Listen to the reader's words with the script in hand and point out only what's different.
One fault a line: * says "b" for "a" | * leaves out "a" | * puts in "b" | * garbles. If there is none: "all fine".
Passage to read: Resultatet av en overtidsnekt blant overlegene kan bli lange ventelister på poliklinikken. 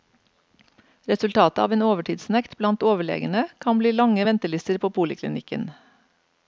all fine